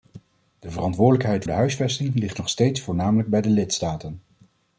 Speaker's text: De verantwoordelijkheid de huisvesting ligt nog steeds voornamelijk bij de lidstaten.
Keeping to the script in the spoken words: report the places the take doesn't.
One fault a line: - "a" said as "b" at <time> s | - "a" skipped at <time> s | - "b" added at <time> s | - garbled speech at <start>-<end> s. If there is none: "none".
none